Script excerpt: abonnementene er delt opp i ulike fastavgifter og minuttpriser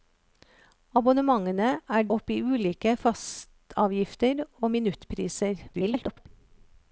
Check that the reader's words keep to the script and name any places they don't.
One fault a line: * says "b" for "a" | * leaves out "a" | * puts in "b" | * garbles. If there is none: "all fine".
* leaves out "delt"
* garbles